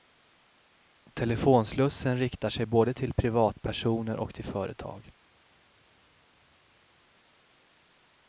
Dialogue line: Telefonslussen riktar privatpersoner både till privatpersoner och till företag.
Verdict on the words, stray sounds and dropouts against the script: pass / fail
fail